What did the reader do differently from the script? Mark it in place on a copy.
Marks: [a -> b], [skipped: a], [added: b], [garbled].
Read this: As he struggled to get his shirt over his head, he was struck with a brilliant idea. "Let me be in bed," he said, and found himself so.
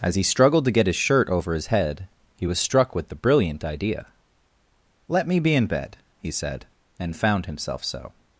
As he struggled to get his shirt over his head, he was struck with [a -> the] brilliant idea. "Let me be in bed," he said, and found himself so.